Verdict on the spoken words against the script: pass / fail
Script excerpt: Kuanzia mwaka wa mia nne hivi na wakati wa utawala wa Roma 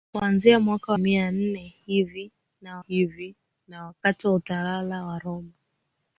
fail